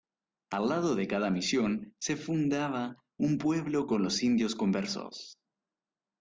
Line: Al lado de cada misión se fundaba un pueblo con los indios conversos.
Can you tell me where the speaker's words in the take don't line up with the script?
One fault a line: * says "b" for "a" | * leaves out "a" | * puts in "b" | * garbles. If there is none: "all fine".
all fine